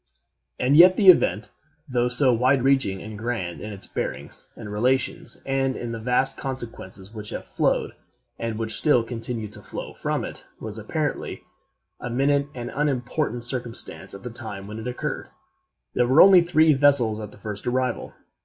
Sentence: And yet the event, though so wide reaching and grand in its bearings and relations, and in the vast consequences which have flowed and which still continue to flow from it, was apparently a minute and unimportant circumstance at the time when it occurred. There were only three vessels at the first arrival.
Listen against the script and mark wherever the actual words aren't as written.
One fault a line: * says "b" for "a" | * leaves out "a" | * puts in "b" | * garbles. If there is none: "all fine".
all fine